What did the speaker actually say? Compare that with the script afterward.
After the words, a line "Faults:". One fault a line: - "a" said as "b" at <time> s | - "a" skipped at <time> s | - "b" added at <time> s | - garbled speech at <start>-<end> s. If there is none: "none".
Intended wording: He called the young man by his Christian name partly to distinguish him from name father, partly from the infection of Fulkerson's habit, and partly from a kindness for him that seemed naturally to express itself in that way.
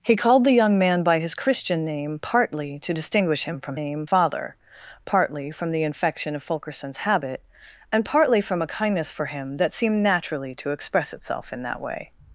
He called the young man by his Christian name partly to distinguish him from name father, partly from the infection of Fulkerson's habit, and partly from a kindness for him that seemed naturally to express itself in that way.
Faults:
none